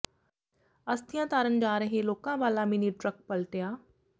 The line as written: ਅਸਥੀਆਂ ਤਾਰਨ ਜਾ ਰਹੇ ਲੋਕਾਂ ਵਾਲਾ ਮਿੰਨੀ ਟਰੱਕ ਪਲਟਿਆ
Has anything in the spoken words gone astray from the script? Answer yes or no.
no